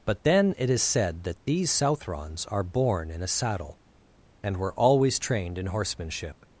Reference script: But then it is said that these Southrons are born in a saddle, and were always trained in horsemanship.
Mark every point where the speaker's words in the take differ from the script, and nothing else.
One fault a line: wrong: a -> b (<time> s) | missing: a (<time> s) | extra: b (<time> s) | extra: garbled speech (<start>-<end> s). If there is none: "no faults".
no faults